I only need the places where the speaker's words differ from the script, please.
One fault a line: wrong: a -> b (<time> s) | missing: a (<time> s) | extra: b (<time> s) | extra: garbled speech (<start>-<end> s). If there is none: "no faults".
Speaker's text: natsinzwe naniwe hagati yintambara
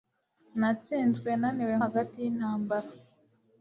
no faults